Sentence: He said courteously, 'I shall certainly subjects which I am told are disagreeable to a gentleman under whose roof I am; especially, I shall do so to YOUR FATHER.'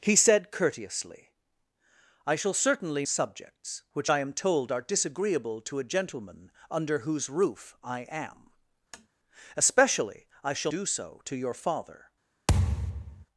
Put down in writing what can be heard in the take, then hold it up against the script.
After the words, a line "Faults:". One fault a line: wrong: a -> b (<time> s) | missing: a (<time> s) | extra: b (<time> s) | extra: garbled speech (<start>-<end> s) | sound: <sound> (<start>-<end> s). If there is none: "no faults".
He said courteously, 'I shall certainly subjects which I am told are disagreeable to a gentleman under whose roof I am; especially, I shall do so to YOUR FATHER.'
Faults:
sound: tap (8.9-9.1 s)
sound: thud (12.5-13.3 s)